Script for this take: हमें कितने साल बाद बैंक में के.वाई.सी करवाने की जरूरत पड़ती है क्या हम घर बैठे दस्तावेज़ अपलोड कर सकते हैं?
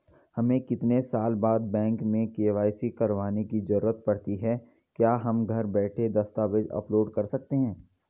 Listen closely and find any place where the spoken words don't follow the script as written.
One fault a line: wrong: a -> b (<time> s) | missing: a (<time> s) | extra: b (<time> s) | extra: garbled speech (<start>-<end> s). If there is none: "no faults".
no faults